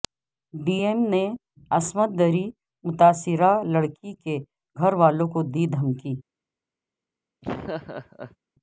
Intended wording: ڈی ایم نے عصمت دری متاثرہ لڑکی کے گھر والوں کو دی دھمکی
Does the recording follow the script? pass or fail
pass